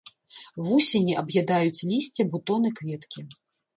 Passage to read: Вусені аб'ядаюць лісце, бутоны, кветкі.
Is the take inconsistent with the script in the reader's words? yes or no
no